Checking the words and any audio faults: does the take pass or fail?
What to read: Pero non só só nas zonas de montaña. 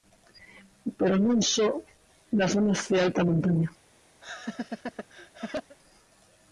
fail